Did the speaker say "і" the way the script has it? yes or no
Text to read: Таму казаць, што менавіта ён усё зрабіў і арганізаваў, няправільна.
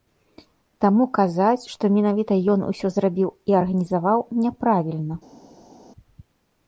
yes